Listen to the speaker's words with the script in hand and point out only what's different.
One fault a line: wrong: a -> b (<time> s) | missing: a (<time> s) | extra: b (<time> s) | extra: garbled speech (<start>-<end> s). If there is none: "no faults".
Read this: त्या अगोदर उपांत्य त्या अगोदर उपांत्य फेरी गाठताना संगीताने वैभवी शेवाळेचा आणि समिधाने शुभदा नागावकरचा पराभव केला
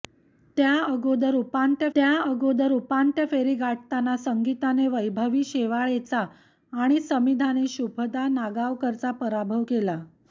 no faults